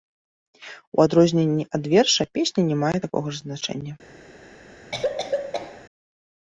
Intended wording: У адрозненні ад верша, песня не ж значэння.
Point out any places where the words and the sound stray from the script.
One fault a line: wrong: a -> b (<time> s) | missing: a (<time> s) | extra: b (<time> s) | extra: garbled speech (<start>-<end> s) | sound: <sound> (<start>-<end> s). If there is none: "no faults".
extra: мае такога (2.8 s)
sound: cough (4.9-5.9 s)